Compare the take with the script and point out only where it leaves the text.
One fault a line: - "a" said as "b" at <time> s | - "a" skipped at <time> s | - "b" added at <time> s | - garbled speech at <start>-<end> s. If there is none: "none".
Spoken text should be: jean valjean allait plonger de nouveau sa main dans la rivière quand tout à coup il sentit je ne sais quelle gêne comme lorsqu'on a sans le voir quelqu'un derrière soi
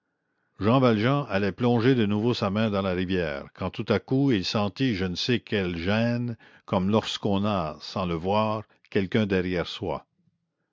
none